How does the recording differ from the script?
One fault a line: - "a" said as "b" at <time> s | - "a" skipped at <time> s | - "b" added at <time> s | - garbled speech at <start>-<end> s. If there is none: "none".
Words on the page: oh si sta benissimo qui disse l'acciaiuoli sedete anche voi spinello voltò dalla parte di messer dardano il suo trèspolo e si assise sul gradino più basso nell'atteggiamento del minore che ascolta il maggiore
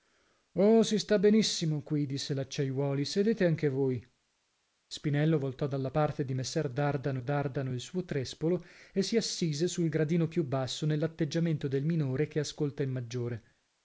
- "dardano" added at 7.2 s